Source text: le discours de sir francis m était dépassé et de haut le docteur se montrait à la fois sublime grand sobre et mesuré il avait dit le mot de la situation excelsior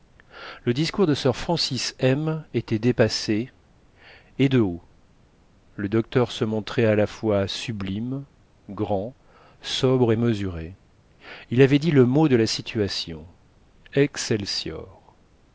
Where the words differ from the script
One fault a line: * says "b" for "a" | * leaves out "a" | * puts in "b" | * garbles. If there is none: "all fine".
all fine